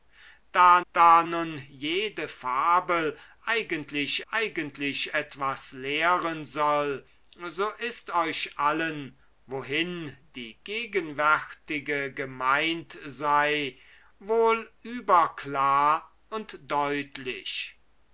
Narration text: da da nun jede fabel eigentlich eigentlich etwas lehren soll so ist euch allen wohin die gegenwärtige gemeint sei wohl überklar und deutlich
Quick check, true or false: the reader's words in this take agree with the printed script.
true